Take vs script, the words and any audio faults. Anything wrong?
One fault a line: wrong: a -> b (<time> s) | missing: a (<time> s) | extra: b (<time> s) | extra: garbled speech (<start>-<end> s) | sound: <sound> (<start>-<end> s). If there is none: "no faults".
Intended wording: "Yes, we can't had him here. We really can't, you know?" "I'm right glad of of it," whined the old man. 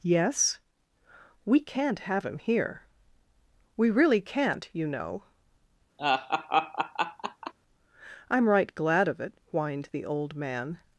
wrong: had -> have (2.0 s)
sound: laugh (6.0-7.5 s)
missing: of (9.2 s)